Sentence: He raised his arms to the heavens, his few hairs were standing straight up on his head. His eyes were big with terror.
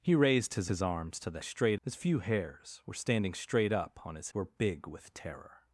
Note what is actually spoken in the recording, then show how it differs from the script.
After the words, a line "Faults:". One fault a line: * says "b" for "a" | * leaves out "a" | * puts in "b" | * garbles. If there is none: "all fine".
He raised his his arms to the straight, his few hairs were standing straight up on his were big with terror.
Faults:
* puts in "his"
* says "straight" for "heavens"
* leaves out "head His eyes"